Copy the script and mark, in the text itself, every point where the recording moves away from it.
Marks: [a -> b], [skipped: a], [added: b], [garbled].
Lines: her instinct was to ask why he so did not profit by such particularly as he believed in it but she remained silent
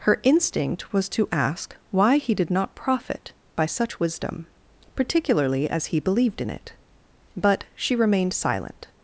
her instinct was to ask why he [skipped: so] did not profit by such [added: wisdom] particularly as he believed in it but she remained silent